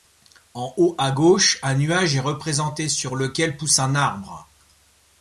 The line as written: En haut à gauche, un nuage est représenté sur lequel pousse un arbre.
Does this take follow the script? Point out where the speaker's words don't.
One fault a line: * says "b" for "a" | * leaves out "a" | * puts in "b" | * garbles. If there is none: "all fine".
all fine